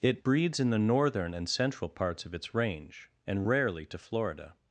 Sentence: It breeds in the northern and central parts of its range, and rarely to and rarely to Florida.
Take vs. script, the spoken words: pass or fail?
fail